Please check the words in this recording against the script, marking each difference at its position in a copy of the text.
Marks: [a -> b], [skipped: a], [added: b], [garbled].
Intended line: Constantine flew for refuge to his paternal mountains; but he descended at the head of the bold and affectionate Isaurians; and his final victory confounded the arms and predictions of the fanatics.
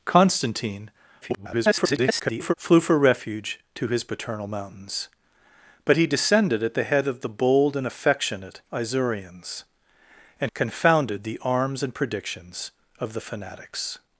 Constantine [garbled] flew for refuge to his paternal mountains; but he descended at the head of the bold and affectionate Isaurians; and [skipped: his final victory] confounded the arms and predictions of the fanatics.